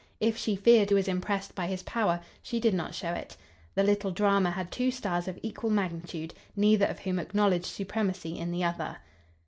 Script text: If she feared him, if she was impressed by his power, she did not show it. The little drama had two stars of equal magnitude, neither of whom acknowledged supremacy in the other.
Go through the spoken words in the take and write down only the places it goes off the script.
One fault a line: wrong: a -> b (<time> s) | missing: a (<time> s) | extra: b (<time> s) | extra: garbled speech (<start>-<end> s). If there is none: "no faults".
missing: him if she (0.9 s)